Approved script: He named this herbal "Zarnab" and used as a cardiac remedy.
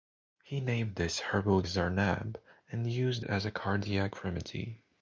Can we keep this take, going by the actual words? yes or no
yes